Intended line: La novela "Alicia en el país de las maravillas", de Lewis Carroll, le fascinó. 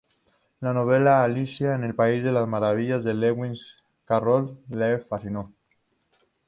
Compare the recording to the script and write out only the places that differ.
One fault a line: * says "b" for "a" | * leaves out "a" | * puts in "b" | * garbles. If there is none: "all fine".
all fine